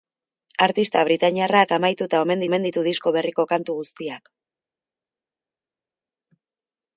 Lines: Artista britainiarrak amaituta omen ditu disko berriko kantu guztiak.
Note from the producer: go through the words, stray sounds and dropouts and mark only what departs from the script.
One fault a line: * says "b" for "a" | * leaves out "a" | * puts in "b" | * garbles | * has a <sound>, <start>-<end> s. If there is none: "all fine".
* puts in "omen"